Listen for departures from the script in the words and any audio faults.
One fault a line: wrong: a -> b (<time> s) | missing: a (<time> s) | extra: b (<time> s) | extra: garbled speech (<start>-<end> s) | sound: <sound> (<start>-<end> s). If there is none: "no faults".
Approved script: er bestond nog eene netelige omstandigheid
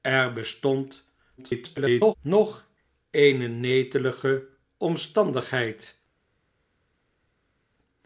extra: garbled speech (1.4-2.1 s)